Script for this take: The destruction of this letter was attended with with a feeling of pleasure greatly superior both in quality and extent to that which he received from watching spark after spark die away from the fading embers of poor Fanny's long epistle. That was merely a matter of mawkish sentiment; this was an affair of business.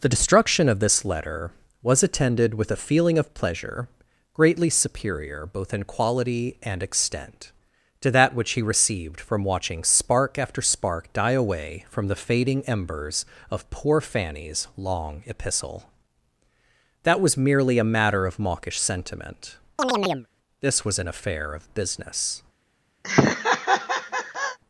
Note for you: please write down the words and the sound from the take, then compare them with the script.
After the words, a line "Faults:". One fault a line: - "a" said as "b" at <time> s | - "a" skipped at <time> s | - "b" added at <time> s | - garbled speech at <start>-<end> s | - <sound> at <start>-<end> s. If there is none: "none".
The destruction of this letter was attended with a feeling of pleasure greatly superior both in quality and extent to that which he received from watching spark after spark die away from the fading embers of poor Fanny's long epistle. That was merely a matter of mawkish sentiment; this was an affair of business.
Faults:
- "with" skipped at 2.7 s
- chirp at 19.8-20.3 s
- laugh at 23.0-24.6 s